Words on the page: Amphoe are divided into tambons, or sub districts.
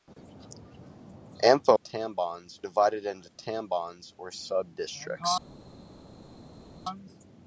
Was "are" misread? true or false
true